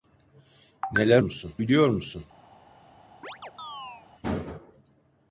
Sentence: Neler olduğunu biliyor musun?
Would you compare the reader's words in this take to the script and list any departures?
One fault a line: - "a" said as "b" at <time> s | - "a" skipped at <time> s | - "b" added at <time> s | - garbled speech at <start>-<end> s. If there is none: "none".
- "olduğunu" said as "musun" at 1.2 s